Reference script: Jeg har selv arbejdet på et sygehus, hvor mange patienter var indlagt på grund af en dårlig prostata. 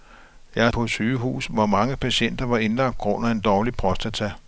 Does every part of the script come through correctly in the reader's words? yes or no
no